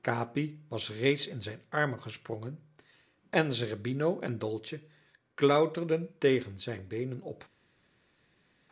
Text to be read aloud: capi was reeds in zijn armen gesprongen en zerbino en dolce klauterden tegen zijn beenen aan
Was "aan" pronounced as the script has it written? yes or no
no